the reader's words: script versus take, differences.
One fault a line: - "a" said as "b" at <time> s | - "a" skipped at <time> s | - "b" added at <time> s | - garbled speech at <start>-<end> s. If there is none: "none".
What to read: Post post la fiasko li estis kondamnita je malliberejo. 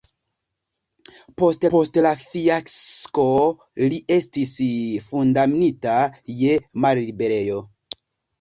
none